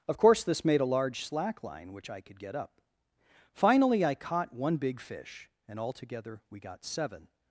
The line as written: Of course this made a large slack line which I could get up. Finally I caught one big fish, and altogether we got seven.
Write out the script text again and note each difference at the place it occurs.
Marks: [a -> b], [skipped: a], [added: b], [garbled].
Of course this made a large slack line which I could get up. Finally I caught one big fish, and altogether we got seven.